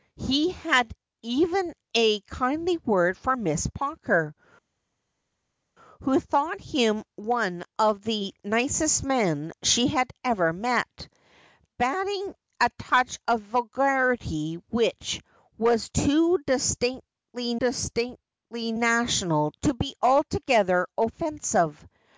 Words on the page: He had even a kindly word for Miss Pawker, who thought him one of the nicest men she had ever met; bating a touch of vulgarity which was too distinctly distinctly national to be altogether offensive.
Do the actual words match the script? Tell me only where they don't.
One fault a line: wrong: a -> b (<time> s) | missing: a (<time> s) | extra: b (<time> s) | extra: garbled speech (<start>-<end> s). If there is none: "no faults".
no faults